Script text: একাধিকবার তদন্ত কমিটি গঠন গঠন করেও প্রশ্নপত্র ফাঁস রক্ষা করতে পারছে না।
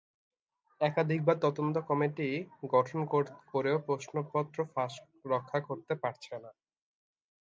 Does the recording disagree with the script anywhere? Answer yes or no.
yes